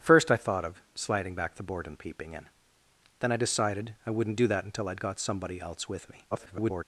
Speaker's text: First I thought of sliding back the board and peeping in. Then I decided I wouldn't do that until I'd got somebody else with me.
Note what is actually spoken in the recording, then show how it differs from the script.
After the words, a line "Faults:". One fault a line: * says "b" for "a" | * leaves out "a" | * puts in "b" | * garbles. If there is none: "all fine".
First I thought of sliding back the board and peeping in. Then I decided I wouldn't do that until I'd got somebody else with me. [garbled]
Faults:
* garbles